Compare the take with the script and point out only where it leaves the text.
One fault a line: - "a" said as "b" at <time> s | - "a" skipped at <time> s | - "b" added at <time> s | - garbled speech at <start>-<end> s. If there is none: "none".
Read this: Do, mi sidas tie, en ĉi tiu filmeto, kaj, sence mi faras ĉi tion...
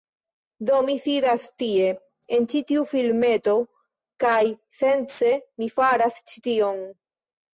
none